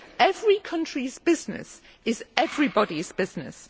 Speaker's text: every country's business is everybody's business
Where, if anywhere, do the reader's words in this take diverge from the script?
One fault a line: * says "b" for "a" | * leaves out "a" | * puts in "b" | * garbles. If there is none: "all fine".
all fine